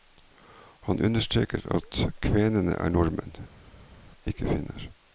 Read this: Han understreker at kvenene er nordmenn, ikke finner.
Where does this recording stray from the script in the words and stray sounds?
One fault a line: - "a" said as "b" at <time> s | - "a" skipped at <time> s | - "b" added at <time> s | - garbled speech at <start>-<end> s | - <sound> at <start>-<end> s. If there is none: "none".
none